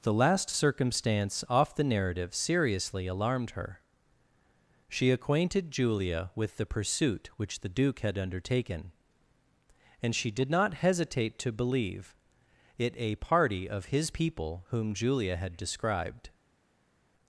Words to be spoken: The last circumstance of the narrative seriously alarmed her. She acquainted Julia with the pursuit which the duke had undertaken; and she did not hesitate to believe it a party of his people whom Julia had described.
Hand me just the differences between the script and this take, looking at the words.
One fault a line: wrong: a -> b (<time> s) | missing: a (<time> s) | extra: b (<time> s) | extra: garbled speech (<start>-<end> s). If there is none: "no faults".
wrong: of -> off (1.5 s)